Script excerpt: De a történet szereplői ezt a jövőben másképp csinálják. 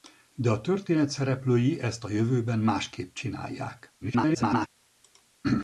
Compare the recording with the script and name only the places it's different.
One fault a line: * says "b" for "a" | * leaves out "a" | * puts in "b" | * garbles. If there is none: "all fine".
* garbles